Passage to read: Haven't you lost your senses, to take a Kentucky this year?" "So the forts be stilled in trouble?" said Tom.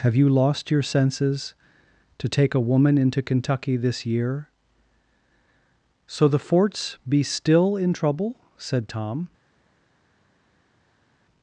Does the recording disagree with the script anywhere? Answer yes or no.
yes